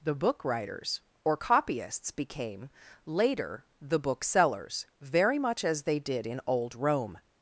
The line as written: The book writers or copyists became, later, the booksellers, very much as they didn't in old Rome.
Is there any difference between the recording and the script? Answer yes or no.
yes